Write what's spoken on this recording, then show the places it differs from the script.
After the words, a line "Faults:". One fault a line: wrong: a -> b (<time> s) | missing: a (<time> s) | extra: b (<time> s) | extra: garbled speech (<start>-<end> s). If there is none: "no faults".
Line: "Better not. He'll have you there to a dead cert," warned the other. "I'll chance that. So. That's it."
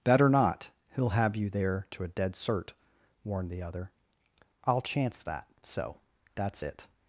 "Better not. He'll have you there to a dead cert," warned the other. "I'll chance that. So. That's it."
Faults:
no faults